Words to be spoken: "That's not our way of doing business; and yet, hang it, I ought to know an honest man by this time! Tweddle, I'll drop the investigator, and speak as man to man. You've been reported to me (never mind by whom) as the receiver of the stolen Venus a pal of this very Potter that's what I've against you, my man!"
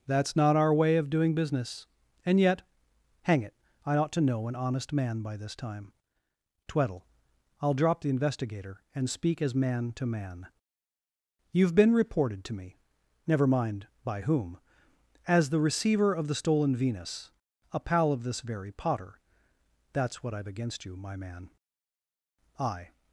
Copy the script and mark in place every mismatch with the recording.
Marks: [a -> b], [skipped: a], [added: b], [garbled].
"That's not our way of doing business; and yet, hang it, I ought to know an honest man by this time! Tweddle, I'll drop the investigator, and speak as man to man. You've been reported to me (never mind by whom) as the receiver of the stolen Venus a pal of this very Potter that's what I've against you, my man!" [added: I]